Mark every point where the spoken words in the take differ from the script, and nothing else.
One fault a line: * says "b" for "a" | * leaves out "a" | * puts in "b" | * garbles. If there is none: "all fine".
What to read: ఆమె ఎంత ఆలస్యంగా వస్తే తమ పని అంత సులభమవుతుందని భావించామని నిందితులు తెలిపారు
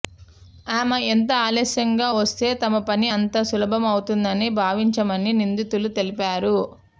all fine